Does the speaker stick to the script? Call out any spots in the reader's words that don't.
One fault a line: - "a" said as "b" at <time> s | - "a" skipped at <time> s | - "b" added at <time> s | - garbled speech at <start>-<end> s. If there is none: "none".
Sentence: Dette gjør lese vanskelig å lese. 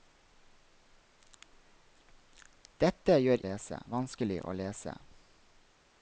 none